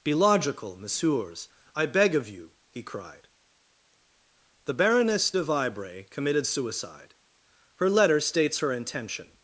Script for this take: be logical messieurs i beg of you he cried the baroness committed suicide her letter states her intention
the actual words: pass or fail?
fail